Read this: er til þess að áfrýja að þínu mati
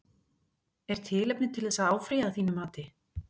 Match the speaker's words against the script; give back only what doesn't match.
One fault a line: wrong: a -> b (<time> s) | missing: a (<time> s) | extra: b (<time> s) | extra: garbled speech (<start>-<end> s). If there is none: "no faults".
extra: tilefni (1.1 s)